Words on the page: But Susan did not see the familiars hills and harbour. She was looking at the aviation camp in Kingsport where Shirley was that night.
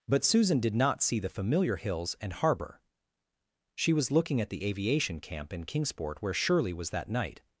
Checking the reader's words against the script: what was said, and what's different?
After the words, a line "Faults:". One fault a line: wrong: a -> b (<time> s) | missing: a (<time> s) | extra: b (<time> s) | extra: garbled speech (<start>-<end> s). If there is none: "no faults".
But Susan did not see the familiar hills and harbour. She was looking at the aviation camp in Kingsport where Shirley was that night.
Faults:
wrong: familiars -> familiar (1.3 s)